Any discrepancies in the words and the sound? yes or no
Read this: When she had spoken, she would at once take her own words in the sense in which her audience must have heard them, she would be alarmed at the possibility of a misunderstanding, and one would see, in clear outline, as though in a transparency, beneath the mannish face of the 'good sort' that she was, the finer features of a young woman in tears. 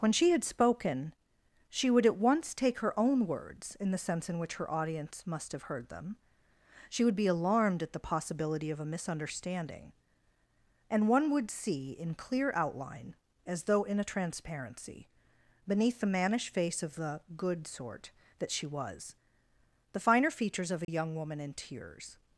yes